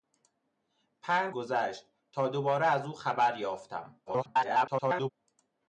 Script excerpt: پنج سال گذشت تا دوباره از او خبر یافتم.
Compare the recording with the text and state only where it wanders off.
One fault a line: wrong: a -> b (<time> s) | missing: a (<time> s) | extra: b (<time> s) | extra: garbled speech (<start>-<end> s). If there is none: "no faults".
missing: سال (1.4 s)
extra: garbled speech (4.1-5.1 s)